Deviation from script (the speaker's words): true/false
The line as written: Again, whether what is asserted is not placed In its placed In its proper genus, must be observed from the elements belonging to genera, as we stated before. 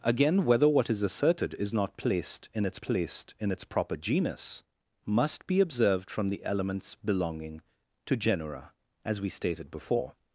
false